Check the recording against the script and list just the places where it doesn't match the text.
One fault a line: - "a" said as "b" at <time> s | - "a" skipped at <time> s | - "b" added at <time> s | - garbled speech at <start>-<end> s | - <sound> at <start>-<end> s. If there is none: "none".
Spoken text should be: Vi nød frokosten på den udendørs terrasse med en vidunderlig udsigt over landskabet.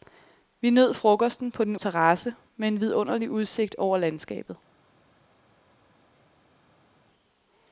- "udendørs" skipped at 1.8 s